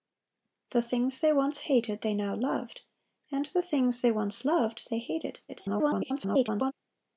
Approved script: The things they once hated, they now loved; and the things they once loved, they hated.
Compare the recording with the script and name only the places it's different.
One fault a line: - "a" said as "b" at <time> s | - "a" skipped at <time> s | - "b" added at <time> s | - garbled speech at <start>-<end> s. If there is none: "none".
- garbled speech at 5.5-6.7 s